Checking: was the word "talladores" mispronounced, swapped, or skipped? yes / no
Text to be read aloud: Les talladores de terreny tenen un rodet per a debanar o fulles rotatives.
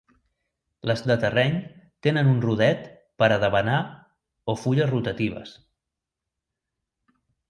yes